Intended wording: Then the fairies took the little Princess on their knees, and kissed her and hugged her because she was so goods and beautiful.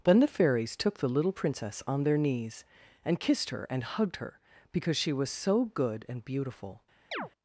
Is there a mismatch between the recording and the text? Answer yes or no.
yes